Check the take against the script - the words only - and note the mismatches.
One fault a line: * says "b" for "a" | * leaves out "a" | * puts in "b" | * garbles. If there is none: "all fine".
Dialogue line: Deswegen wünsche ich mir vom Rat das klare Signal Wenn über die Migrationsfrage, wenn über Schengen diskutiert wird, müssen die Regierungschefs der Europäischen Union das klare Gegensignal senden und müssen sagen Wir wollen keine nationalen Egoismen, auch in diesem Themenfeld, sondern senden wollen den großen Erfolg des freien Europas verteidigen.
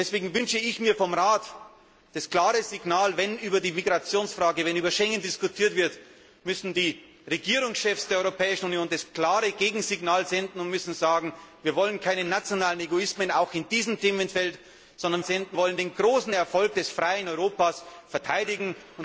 all fine